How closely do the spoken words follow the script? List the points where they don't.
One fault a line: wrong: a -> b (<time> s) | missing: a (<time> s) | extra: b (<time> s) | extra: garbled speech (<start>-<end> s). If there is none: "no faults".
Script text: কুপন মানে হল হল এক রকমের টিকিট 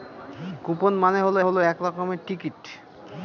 no faults